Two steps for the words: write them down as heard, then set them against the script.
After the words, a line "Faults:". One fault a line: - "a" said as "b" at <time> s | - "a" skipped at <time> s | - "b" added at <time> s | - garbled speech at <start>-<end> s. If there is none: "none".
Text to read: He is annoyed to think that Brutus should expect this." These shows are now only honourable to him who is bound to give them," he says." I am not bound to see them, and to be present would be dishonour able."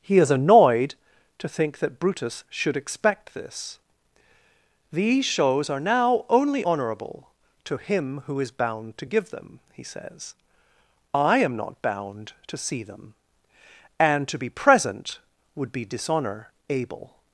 He is annoyed to think that Brutus should expect this." These shows are now only honourable to him who is bound to give them," he says." I am not bound to see them, and to be present would be dishonour able."
Faults:
none